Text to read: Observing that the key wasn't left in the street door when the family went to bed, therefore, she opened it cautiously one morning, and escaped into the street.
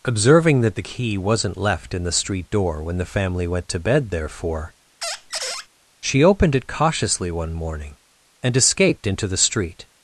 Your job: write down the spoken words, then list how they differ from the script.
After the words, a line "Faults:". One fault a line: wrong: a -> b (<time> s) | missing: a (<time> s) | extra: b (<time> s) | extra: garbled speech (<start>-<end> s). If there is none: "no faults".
Observing that the key wasn't left in the street door when the family went to bed, therefore, she opened it cautiously one morning, and escaped into the street.
Faults:
no faults